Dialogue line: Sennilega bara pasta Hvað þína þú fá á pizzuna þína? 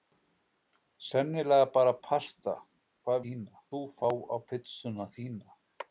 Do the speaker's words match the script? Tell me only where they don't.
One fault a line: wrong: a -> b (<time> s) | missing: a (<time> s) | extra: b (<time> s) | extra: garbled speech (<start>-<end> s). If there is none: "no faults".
no faults